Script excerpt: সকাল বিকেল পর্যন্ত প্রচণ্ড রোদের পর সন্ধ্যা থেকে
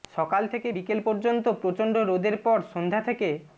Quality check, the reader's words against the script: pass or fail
fail